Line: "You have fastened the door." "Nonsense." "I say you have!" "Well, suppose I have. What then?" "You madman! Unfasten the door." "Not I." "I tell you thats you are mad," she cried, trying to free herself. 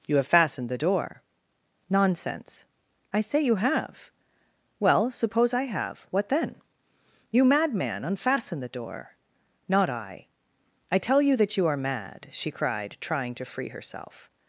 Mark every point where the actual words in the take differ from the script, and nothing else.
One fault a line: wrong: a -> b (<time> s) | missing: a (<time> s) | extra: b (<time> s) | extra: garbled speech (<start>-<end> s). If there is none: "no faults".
wrong: thats -> that (11.4 s)